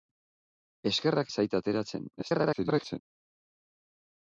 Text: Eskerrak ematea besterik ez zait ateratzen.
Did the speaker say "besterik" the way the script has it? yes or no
no